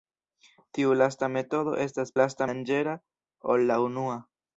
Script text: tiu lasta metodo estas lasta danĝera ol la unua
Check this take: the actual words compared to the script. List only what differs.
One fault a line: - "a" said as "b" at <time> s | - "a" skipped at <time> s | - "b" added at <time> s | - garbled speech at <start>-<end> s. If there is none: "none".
none